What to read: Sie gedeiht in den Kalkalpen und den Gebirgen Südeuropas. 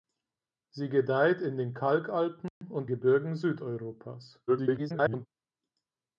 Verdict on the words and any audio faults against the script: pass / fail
fail